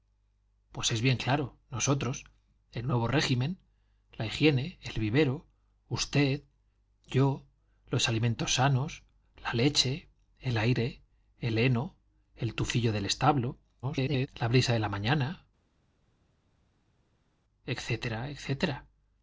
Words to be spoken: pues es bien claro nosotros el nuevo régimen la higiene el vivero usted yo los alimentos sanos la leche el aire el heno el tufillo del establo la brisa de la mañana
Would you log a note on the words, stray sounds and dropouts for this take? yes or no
yes